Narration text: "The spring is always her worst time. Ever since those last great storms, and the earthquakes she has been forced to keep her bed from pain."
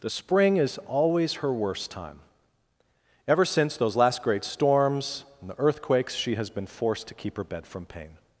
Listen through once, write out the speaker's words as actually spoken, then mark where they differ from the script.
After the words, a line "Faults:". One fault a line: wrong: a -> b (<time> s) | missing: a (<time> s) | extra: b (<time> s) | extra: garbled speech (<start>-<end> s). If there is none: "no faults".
"The spring is always her worst time. Ever since those last great storms, and the earthquakes she has been forced to keep her bed from pain."
Faults:
no faults